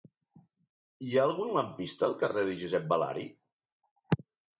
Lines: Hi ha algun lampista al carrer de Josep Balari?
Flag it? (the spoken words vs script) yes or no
no